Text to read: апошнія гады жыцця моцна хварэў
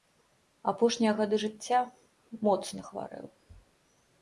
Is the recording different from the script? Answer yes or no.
no